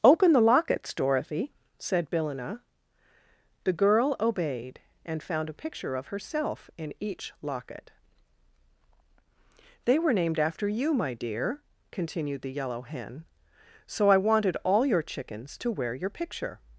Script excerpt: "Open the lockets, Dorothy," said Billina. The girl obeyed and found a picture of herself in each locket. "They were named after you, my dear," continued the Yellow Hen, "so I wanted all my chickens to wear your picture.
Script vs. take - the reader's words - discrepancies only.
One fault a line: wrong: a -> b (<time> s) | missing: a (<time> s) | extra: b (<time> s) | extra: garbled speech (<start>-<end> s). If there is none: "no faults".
wrong: my -> your (14.9 s)